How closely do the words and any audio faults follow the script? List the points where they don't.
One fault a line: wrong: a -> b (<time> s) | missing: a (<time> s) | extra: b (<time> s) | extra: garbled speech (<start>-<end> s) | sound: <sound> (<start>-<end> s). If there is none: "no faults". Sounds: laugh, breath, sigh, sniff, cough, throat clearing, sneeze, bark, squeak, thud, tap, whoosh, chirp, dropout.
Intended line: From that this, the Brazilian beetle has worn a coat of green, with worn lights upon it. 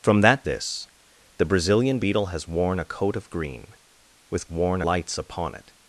no faults